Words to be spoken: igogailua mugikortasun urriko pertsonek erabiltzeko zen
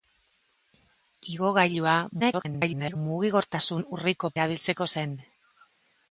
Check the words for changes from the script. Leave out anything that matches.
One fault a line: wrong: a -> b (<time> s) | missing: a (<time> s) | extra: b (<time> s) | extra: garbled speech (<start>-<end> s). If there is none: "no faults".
extra: garbled speech (2.2-3.0 s)
missing: pertsonek (4.3 s)